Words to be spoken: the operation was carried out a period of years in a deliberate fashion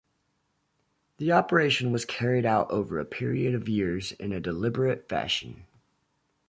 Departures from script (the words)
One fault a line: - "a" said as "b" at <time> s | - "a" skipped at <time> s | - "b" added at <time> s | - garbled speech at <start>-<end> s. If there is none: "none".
- "over" added at 2.7 s